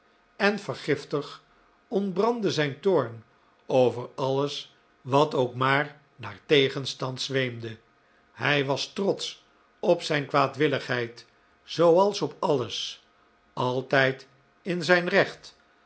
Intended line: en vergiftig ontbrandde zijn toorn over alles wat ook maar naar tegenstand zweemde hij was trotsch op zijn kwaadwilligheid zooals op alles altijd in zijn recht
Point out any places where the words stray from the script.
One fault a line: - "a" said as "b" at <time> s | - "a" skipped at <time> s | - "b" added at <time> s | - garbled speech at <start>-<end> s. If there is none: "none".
none